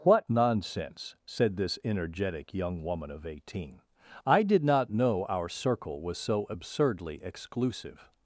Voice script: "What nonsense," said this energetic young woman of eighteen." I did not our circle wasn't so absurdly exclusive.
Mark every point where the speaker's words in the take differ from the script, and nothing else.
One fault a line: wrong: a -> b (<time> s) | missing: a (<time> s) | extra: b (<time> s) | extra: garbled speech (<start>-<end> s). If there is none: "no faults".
extra: know (4.9 s)
wrong: wasn't -> was (6.0 s)